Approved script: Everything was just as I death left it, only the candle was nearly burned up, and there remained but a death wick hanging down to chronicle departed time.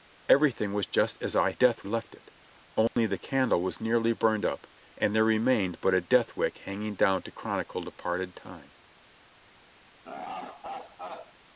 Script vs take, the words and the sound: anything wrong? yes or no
yes